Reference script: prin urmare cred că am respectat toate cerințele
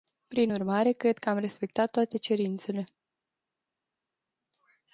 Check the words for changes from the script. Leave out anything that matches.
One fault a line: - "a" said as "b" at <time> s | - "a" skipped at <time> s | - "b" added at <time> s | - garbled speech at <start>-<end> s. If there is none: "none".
none